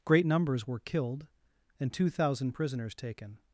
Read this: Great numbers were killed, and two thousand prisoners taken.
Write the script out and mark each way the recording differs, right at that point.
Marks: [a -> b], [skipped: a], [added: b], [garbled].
Great numbers were killed, and two thousand prisoners taken.